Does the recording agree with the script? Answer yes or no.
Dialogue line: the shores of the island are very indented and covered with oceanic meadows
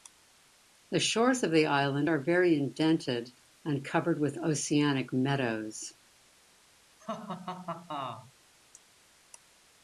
yes